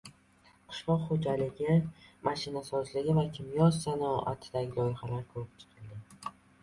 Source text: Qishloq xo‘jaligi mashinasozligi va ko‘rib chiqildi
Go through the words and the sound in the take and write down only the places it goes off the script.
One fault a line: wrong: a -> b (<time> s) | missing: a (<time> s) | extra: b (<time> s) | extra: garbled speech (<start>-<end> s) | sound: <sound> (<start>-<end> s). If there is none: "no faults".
extra: kimyo sanoatidagi loyihalar (3.4 s)